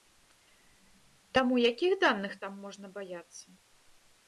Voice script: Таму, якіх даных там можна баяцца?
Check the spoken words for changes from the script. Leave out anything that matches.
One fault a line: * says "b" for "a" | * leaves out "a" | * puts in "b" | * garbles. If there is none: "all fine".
all fine